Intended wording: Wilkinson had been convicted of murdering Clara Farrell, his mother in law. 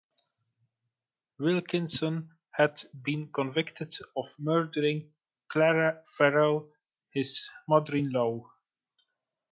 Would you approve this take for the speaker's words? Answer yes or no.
yes